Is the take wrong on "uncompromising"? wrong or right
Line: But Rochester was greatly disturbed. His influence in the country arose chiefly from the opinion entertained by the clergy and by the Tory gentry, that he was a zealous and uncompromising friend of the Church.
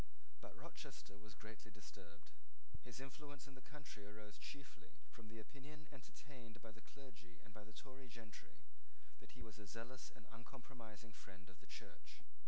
right